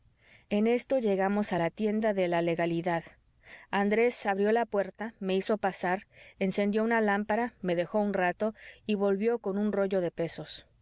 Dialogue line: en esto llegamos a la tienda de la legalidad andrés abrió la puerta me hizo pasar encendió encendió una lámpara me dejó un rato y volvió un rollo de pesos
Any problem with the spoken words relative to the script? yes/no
yes